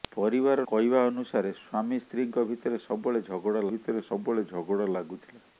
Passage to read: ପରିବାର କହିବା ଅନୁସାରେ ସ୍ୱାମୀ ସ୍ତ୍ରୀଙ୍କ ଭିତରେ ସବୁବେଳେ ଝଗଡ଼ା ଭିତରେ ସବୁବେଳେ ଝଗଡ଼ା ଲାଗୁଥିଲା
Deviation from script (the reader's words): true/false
false